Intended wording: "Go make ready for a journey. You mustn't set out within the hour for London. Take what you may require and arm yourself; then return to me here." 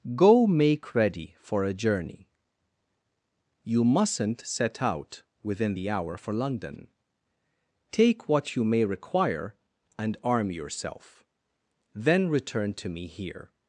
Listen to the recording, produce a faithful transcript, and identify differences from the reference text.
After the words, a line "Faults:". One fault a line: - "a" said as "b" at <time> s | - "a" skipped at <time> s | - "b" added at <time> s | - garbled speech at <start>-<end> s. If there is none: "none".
"Go make ready for a journey. You mustn't set out within the hour for London. Take what you may require and arm yourself; then return to me here."
Faults:
none